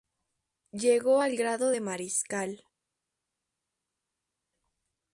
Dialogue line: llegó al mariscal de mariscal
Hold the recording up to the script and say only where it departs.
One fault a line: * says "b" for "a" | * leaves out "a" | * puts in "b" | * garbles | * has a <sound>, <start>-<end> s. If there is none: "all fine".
* says "grado" for "mariscal"